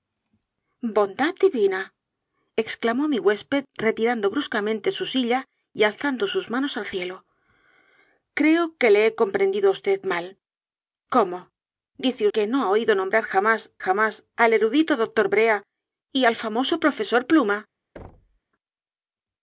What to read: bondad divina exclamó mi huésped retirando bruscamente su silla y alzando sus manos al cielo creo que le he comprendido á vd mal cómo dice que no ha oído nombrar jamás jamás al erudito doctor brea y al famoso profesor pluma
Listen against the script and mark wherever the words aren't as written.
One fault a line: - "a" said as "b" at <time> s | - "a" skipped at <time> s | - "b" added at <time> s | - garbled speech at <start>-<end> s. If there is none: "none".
none